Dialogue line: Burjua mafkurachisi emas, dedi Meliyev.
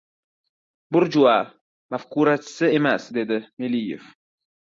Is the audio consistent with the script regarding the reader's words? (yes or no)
yes